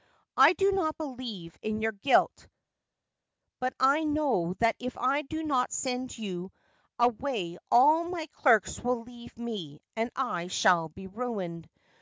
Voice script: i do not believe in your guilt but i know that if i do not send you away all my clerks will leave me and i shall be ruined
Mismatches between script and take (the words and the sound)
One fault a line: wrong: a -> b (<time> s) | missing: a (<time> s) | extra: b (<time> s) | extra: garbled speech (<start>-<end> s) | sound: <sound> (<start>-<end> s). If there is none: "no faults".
no faults